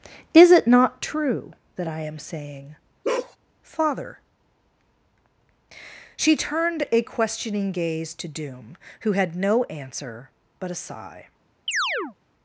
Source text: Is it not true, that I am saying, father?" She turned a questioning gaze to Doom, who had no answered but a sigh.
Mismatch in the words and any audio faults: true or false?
true